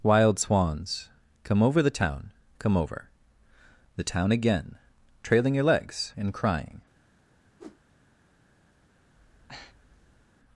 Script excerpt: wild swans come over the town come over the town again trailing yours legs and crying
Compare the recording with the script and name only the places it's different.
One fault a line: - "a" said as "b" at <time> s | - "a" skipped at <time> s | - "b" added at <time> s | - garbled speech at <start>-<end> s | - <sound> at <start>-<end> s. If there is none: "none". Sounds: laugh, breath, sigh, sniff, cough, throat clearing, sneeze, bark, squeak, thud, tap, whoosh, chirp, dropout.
- "yours" said as "your" at 5.5 s
- whoosh at 7.6-7.8 s
- breath at 9.1-10.3 s